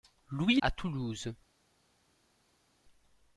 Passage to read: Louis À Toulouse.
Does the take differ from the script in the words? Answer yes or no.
no